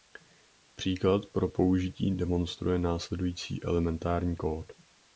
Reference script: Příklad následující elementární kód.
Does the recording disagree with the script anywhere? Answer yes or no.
yes